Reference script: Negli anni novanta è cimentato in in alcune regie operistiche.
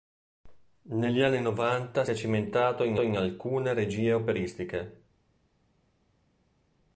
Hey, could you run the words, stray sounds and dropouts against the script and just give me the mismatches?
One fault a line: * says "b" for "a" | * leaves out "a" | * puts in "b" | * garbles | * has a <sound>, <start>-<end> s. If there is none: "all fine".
all fine